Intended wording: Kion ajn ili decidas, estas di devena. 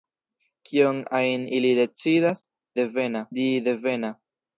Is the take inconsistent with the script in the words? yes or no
yes